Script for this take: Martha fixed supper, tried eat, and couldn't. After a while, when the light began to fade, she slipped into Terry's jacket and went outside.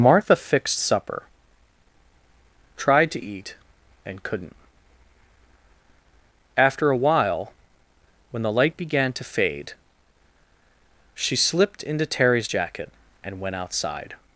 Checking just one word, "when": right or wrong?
right